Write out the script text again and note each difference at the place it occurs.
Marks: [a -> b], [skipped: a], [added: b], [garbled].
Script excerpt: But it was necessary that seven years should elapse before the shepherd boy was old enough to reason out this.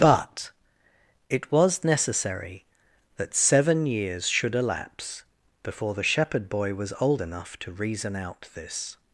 But it was necessary that seven years should elapse before the shepherd boy was old enough to reason out this.